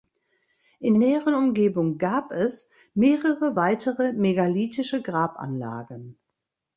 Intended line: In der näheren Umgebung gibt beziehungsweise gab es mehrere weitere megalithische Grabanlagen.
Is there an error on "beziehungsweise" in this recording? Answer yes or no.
yes